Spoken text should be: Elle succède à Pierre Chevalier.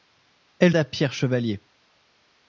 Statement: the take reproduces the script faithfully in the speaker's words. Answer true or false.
false